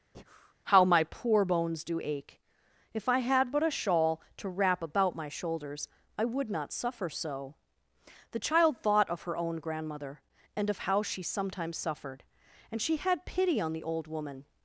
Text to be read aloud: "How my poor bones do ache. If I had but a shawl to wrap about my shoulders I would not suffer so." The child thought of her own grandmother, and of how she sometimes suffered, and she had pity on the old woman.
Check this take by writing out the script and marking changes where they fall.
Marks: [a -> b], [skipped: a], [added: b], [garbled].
"How my poor bones do ache. If I had but a shawl to wrap about my shoulders I would not suffer so." The child thought of her own grandmother, and of how she sometimes suffered, and she had pity on the old woman.